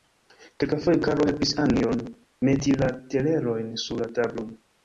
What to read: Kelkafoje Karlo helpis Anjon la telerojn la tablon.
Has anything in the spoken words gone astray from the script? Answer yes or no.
yes